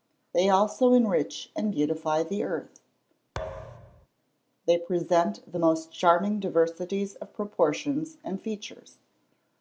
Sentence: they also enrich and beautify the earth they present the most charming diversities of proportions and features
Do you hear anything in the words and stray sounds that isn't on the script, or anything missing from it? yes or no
yes